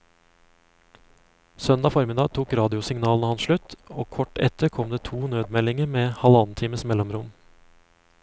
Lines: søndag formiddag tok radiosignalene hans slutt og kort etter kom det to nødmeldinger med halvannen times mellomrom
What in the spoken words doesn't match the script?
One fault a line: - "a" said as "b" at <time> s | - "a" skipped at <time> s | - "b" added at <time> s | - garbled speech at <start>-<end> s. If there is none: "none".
none